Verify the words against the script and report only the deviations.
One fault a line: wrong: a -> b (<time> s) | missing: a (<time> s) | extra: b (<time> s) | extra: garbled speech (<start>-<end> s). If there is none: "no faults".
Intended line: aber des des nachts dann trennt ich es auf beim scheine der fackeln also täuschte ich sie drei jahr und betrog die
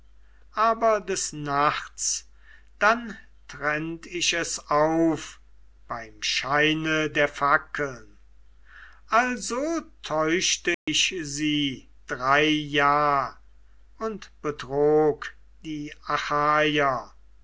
missing: des (1.3 s)